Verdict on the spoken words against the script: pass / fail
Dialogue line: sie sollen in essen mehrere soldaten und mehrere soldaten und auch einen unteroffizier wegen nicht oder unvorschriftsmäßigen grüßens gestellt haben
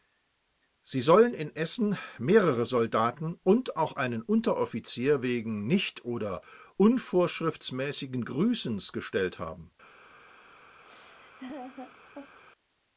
fail